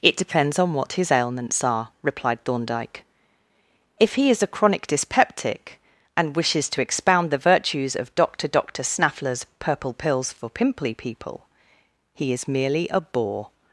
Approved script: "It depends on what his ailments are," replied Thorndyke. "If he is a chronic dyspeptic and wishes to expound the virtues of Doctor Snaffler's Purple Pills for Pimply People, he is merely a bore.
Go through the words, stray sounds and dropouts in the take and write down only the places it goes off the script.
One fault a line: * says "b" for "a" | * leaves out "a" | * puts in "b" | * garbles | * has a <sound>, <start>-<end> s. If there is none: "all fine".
* puts in "Doctor"